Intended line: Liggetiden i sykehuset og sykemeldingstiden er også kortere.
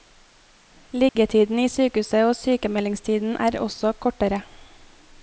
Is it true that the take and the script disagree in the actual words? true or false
false